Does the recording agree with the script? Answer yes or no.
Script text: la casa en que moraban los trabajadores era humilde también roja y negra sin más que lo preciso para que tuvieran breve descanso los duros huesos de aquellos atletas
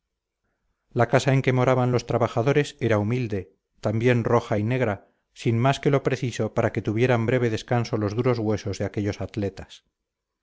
yes